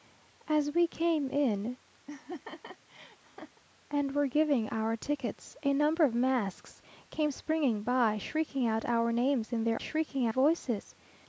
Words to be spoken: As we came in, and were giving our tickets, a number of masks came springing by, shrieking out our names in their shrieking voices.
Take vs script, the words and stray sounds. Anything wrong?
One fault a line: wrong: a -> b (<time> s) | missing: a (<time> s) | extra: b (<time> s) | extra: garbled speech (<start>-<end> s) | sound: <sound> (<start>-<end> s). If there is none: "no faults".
sound: laugh (2.1-3.6 s)